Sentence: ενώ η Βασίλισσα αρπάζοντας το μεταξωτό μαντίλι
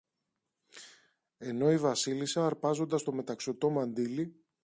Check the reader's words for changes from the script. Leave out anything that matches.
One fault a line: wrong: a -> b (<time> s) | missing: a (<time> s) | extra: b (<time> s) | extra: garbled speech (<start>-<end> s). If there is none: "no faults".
no faults